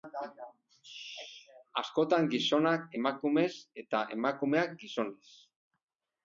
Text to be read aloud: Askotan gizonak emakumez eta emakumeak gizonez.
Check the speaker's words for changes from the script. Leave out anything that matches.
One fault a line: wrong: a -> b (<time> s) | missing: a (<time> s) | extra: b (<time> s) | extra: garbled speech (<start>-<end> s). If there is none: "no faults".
no faults